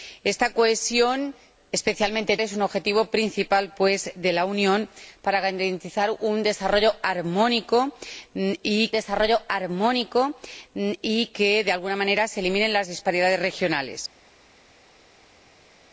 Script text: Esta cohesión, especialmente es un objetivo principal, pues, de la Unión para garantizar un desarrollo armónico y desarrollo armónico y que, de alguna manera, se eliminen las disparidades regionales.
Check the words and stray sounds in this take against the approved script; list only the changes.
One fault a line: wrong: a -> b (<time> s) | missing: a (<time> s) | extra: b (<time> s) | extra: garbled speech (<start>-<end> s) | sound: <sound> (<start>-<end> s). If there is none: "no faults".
no faults